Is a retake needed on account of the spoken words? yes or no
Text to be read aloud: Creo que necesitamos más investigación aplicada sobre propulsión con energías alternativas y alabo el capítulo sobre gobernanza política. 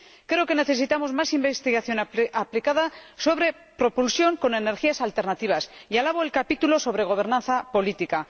no